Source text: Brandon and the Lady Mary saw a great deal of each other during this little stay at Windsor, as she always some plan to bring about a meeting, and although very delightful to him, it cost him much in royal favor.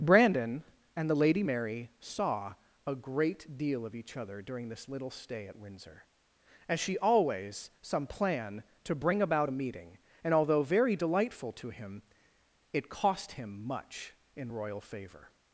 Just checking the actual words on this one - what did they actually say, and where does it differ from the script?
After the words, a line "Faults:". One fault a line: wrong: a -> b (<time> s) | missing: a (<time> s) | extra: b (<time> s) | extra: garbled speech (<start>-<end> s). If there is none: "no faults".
Brandon and the Lady Mary saw a great deal of each other during this little stay at Windsor, as she always some plan to bring about a meeting, and although very delightful to him, it cost him much in royal favor.
Faults:
no faults